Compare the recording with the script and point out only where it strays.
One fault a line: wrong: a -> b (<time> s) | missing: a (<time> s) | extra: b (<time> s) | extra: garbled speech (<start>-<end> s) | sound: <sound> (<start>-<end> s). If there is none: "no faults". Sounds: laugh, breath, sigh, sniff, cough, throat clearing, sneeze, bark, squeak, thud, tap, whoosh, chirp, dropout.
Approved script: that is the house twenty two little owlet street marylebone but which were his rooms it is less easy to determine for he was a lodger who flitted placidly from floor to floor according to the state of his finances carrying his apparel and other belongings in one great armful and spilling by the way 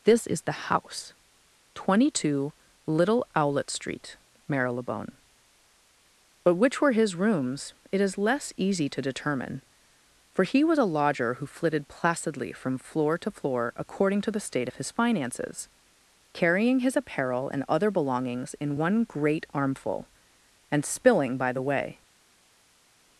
wrong: that -> this (0.0 s)